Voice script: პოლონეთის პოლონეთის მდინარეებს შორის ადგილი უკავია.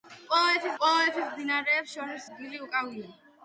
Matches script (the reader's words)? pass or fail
pass